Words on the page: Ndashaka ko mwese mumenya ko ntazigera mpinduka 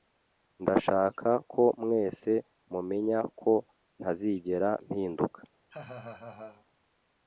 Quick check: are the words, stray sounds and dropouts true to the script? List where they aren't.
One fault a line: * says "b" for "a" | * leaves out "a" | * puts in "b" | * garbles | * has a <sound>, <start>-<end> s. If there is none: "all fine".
* has a laugh, 5.7-6.7 s